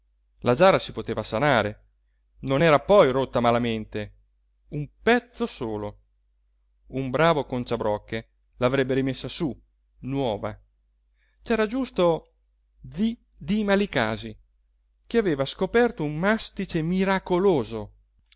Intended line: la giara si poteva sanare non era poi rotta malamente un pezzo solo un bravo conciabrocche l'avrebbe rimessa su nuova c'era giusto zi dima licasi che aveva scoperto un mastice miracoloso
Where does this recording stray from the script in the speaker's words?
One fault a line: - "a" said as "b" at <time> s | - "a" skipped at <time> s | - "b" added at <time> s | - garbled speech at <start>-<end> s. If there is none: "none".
none